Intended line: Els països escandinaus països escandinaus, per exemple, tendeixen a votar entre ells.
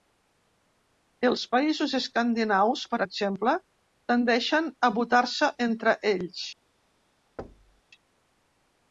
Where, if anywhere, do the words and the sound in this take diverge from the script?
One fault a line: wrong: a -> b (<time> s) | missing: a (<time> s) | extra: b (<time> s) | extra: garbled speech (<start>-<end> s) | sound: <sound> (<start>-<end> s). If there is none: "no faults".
missing: països escandinaus (2.9 s)
extra: se (5.4 s)
sound: thud (7.4-7.8 s)